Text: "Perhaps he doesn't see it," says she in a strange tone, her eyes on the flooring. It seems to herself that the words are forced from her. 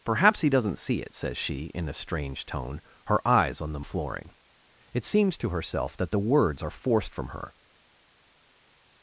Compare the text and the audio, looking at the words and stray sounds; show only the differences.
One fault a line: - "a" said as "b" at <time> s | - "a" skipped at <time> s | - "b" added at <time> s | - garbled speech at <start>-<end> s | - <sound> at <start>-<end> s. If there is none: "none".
none